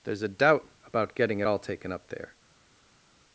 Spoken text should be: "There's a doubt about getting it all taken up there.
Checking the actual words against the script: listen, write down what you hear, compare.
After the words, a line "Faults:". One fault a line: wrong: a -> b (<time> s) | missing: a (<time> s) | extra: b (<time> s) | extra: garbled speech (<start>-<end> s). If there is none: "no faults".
"There's a doubt about getting it all taken up there.
Faults:
no faults